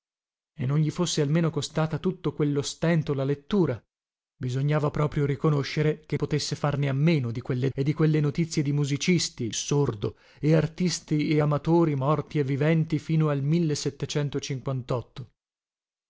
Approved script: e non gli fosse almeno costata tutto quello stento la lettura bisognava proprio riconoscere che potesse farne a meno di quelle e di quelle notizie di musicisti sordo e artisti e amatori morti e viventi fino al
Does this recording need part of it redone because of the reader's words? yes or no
no